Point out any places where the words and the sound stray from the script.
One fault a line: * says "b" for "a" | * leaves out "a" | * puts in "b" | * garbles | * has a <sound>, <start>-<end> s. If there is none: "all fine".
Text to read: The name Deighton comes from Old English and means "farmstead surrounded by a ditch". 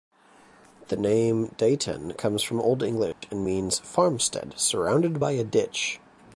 * has a dropout, 3.1-3.2 s